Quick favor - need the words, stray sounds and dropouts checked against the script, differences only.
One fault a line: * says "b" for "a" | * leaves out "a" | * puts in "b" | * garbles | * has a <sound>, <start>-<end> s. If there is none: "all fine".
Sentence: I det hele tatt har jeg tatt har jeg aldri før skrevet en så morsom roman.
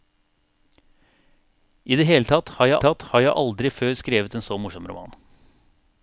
all fine